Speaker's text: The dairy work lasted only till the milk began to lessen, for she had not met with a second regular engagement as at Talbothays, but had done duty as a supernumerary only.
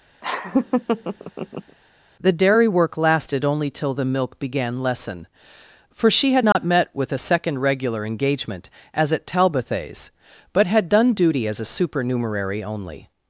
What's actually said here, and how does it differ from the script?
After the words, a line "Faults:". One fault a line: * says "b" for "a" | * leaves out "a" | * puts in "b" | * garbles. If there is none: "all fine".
The dairy work lasted only till the milk began lessen, for she had not met with a second regular engagement as at Talbothays, but had done duty as a supernumerary only.
Faults:
* leaves out "to"